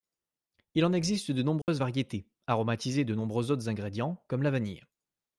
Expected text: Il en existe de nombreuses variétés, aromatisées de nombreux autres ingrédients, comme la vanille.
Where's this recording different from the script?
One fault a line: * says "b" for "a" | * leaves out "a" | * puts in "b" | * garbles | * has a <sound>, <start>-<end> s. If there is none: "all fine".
* has a dropout, 1.6-1.7 s